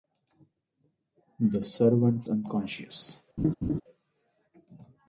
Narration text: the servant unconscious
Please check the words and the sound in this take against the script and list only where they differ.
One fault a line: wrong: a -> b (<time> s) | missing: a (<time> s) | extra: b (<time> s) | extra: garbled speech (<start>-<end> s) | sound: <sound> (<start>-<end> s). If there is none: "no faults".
sound: laugh (3.4-3.8 s)